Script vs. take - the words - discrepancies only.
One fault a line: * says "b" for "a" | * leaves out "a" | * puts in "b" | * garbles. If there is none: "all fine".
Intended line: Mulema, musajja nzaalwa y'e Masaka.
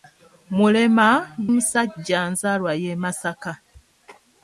all fine